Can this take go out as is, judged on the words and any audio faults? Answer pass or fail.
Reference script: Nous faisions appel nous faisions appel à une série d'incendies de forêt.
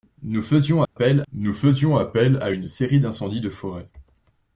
fail